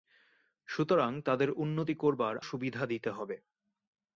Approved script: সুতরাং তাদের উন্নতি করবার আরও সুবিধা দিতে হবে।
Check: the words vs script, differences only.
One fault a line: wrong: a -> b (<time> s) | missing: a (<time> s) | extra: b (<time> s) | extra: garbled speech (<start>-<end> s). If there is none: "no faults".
missing: আরও (2.4 s)